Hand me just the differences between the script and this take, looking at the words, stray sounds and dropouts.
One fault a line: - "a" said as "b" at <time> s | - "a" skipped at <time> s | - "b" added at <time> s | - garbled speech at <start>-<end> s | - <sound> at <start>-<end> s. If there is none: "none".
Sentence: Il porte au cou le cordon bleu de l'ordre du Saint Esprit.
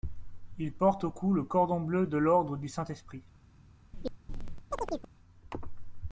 - chirp at 3.9-5.1 s